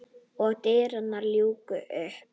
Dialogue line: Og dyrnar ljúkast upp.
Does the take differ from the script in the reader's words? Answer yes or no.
no